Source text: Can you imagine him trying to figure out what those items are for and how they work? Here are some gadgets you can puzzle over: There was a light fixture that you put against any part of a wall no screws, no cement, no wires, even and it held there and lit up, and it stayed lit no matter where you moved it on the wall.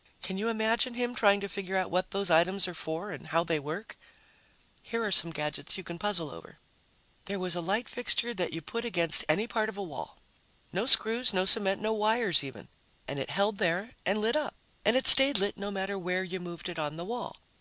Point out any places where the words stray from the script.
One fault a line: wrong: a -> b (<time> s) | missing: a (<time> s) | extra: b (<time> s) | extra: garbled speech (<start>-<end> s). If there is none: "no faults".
no faults